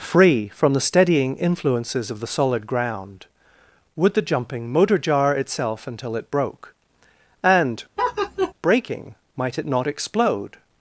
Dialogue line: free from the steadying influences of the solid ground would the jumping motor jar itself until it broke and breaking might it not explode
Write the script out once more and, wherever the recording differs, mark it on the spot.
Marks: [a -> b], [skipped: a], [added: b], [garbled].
free from the steadying influences of the solid ground would the jumping motor jar itself until it broke and breaking might it not explode